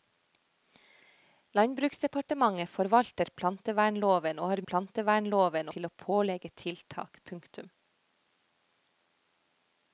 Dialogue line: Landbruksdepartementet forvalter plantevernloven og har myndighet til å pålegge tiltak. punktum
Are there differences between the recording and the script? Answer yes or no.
yes